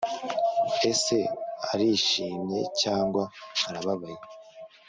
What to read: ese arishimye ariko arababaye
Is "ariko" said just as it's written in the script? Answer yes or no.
no